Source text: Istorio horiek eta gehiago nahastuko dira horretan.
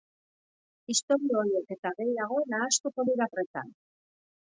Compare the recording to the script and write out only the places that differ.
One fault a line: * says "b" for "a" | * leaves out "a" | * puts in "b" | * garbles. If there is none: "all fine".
all fine